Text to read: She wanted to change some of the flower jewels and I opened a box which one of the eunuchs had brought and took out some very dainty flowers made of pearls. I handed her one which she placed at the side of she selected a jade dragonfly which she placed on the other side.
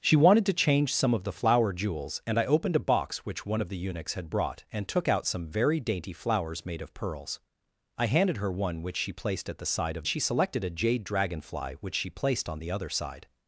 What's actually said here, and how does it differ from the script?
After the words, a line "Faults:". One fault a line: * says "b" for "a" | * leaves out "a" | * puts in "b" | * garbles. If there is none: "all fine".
She wanted to change some of the flower jewels and I opened a box which one of the eunuchs had brought and took out some very dainty flowers made of pearls. I handed her one which she placed at the side of she selected a jade dragonfly which she placed on the other side.
Faults:
all fine